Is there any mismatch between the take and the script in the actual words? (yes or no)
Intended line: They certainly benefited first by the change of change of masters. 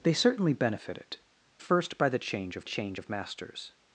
no